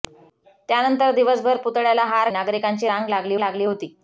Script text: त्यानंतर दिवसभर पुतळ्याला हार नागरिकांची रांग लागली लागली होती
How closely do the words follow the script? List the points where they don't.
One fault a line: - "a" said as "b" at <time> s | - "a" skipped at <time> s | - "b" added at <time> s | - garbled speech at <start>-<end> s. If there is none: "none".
none